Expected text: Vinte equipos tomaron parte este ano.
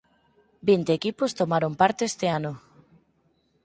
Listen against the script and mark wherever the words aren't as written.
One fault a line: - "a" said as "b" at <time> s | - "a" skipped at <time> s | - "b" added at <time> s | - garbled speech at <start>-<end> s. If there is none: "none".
none